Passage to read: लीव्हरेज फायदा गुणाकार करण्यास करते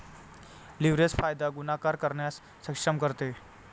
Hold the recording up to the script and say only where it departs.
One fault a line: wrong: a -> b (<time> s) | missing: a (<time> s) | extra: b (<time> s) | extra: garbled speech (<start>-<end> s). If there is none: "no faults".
extra: सक्षम (2.6 s)